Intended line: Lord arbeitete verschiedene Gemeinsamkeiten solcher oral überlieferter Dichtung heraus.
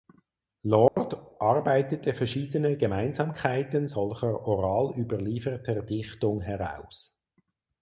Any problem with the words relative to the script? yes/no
no